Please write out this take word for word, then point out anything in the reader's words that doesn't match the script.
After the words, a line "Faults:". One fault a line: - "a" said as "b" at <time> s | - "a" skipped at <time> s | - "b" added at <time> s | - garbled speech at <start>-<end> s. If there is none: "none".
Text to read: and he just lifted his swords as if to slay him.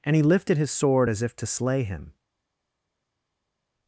and he lifted his sword as if to slay him.
Faults:
- "just" skipped at 0.2 s
- "swords" said as "sword" at 0.7 s